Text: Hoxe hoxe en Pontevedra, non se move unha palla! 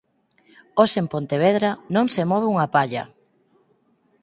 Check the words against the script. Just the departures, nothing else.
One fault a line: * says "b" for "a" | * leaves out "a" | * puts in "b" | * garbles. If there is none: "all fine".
* leaves out "hoxe"